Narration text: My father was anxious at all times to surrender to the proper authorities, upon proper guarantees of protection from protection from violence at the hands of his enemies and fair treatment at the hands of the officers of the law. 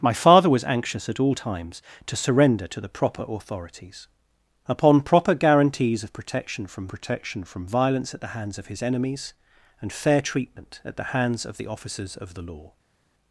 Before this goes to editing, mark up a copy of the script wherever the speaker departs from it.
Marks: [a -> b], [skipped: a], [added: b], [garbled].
My father was anxious at all times to surrender to the proper authorities, upon proper guarantees of protection from protection from violence at the hands of his enemies and fair treatment at the hands of the officers of the law.